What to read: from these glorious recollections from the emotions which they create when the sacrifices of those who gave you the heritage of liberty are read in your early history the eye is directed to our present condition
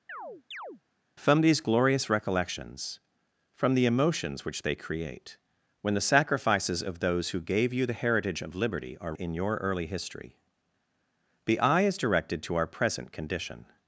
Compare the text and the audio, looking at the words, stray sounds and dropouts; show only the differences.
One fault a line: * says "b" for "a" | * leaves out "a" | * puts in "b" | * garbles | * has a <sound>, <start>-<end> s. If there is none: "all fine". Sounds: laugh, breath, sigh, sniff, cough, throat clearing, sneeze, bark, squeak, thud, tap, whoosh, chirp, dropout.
* has a chirp, 0.1-0.8 s
* leaves out "read"